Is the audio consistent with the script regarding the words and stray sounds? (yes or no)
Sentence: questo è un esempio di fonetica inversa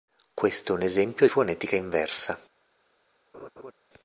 no